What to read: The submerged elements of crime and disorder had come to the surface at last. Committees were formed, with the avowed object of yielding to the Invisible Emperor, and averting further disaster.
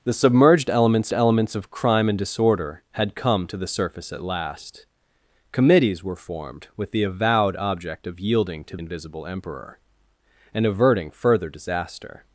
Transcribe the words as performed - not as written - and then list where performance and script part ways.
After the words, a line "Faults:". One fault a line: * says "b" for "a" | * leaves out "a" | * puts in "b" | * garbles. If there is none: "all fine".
The submerged elements elements of crime and disorder had come to the surface at last. Committees were formed, with the avowed object of yielding to Invisible Emperor, and averting further disaster.
Faults:
* puts in "elements"
* leaves out "the"